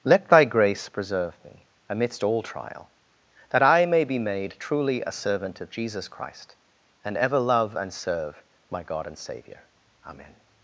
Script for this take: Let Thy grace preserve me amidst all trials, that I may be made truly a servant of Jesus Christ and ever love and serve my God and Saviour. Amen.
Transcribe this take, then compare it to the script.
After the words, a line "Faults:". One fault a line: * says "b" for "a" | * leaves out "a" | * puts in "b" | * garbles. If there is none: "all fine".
Let Thy grace preserve me amidst all trial, that I may be made truly a servant of Jesus Christ and ever love and serve my God and Saviour. Amen.
Faults:
* says "trial" for "trials"